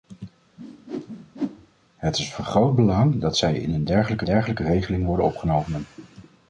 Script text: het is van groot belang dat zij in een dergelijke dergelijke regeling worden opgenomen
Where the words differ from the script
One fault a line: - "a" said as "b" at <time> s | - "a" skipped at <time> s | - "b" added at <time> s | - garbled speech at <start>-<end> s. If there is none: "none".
none